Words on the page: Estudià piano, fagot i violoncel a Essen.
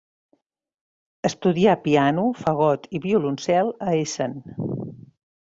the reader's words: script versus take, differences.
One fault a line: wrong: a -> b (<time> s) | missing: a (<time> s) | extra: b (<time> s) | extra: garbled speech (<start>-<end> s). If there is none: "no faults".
no faults